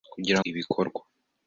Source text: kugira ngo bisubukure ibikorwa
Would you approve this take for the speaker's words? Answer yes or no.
no